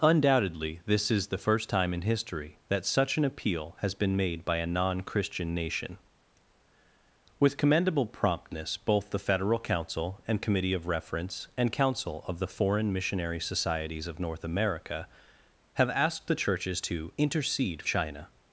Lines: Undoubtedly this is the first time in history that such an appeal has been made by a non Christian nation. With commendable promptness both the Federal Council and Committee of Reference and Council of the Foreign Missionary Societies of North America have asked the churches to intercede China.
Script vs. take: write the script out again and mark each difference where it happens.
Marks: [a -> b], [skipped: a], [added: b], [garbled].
Undoubtedly this is the first time in history that such an appeal has been made by a non Christian nation. With commendable promptness both the Federal Council and Committee of Reference and Council of the Foreign Missionary Societies of North America have asked the churches to intercede China.